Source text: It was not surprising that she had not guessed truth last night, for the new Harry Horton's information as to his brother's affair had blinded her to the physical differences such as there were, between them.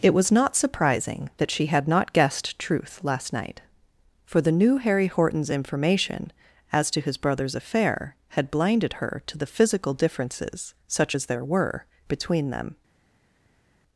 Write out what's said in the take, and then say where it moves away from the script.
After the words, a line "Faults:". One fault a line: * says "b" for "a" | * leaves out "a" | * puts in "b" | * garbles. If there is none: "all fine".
It was not surprising that she had not guessed truth last night, for the new Harry Horton's information as to his brother's affair had blinded her to the physical differences such as there were, between them.
Faults:
all fine